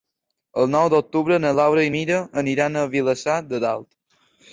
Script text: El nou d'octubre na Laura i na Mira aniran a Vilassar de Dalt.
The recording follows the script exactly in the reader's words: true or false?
false